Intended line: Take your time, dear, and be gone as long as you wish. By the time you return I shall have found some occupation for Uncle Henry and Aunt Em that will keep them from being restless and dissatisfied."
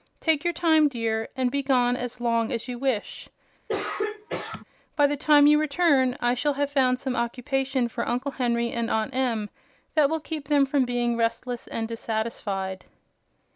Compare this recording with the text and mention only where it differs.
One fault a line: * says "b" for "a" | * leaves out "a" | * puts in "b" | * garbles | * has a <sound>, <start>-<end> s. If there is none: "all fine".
* has a throat clearing, 3.7-4.6 s